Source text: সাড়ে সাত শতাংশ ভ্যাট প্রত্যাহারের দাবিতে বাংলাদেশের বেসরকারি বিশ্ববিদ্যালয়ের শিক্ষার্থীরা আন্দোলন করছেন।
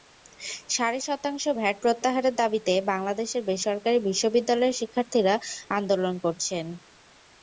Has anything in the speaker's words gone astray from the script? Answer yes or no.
yes